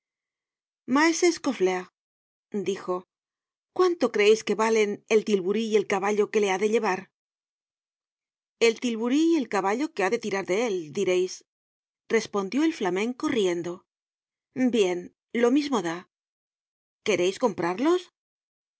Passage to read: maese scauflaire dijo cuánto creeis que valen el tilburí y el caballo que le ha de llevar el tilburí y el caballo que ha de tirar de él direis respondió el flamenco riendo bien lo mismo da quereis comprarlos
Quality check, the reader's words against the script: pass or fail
pass